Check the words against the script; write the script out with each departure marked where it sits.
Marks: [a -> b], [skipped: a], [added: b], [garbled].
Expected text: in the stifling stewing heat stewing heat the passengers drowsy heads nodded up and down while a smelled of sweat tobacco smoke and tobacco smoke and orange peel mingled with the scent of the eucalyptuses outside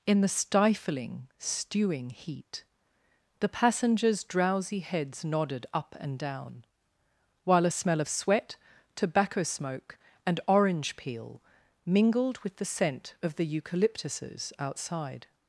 in the stifling stewing heat [skipped: stewing heat] the passengers drowsy heads nodded up and down while a [smelled -> smell] of sweat tobacco smoke and [skipped: tobacco smoke and] orange peel mingled with the scent of the eucalyptuses outside